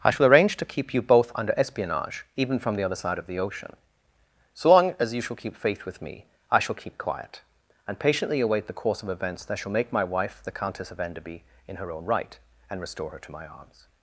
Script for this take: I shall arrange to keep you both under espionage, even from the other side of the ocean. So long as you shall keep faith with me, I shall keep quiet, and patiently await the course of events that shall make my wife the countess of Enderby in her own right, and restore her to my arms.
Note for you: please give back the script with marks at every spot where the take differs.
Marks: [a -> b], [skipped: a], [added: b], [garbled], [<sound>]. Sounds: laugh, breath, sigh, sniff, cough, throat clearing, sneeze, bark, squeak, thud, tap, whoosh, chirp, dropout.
I shall arrange to keep you both under espionage, even from the other side of the ocean. So long as you shall keep faith with me, I shall keep quiet, and patiently await the course of events that shall make my wife the countess of Enderby in her own right, and restore her to my arms.